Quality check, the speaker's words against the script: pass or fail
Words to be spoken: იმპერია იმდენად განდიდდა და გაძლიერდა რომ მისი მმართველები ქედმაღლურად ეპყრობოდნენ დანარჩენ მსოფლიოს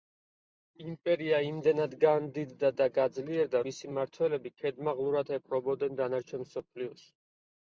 fail